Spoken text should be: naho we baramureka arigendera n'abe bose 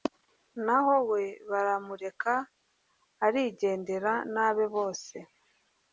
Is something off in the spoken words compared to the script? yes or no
no